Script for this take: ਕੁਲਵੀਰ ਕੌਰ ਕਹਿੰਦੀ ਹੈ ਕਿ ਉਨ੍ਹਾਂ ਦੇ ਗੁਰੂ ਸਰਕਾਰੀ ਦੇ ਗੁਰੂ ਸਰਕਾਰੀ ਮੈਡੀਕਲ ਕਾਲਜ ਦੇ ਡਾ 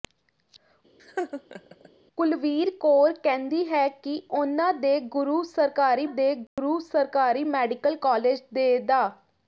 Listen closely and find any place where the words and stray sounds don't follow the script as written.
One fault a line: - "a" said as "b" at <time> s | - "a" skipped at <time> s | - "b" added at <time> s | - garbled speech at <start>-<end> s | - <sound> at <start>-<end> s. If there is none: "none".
- laugh at 1.0-1.9 s
- dropout at 6.5-6.6 s